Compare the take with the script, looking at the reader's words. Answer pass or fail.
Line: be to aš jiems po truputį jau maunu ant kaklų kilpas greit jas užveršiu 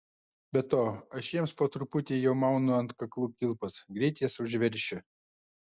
pass